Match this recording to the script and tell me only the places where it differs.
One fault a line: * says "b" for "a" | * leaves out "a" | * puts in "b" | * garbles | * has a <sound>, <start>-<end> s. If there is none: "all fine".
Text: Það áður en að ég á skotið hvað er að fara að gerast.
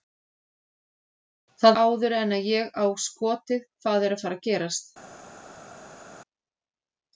all fine